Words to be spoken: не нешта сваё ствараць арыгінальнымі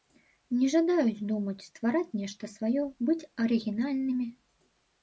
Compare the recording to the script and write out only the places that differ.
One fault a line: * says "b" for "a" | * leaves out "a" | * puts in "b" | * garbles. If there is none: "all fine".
* puts in "жадаюць думаць ствараць"
* says "быць" for "ствараць"